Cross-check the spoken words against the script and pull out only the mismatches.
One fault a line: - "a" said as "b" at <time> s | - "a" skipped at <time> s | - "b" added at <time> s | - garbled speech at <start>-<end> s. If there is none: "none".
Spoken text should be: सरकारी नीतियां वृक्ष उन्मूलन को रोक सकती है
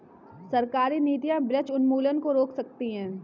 none